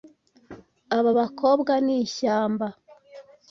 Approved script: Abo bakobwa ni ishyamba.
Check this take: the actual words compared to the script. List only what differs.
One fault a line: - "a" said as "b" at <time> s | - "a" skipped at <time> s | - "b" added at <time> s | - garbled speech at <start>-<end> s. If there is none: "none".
- "Abo" said as "Aba" at 1.0 s